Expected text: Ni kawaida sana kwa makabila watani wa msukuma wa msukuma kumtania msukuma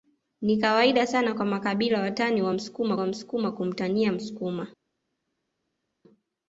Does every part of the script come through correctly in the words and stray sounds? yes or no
yes